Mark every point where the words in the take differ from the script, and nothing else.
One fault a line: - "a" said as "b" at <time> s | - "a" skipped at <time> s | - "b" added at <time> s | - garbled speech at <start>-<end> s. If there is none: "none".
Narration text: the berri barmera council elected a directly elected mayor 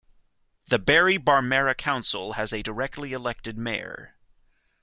- "elected" said as "has" at 2.3 s